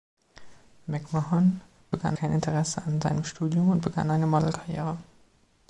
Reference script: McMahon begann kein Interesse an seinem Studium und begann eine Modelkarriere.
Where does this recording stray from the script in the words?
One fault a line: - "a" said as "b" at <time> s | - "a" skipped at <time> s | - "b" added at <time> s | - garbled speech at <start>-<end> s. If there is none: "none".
none